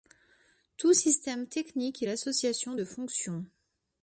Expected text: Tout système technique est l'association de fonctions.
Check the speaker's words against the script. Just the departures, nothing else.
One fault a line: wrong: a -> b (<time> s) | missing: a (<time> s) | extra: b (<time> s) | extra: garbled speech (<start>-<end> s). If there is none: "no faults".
no faults